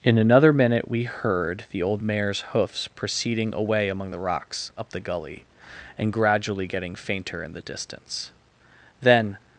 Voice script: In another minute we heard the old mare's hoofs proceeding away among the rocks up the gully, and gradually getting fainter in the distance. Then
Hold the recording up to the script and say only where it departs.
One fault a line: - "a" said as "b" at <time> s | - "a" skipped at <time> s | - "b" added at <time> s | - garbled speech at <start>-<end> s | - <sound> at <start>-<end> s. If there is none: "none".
none